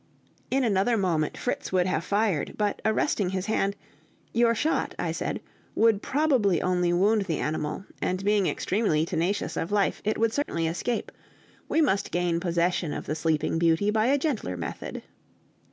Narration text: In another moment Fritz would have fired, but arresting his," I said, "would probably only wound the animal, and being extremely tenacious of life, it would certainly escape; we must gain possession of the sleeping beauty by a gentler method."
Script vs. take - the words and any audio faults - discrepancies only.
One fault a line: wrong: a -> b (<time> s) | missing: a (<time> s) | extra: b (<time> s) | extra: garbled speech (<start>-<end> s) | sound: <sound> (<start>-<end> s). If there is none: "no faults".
extra: hand Your shot (3.5 s)
sound: dropout (10.4-10.5 s)